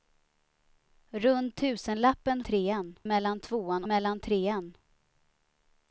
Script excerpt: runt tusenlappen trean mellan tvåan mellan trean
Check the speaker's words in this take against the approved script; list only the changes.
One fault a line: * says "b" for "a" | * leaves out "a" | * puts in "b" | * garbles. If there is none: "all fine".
all fine